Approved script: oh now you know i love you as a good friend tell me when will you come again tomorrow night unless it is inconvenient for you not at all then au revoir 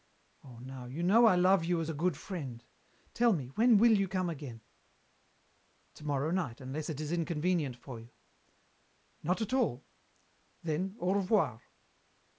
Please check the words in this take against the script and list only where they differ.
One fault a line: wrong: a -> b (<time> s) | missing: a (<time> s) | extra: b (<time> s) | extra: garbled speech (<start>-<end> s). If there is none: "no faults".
no faults